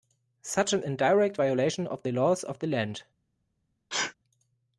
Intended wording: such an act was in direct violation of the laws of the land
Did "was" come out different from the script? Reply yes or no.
yes